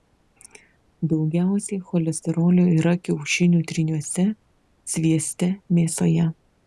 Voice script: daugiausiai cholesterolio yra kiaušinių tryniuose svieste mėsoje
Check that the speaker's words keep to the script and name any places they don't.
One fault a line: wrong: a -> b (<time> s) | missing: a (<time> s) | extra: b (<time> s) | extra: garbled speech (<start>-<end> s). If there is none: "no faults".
no faults